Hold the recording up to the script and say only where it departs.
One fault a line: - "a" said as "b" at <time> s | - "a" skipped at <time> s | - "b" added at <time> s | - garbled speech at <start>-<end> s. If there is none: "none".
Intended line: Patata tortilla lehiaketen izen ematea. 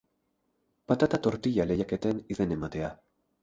none